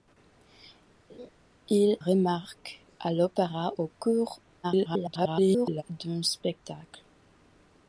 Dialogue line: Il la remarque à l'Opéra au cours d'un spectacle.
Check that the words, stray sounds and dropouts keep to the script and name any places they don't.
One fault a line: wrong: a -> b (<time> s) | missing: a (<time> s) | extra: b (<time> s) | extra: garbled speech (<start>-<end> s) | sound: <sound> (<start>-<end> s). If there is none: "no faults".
sound: laugh (1.1-1.3 s)
missing: la (2.0 s)
extra: garbled speech (4.6-5.8 s)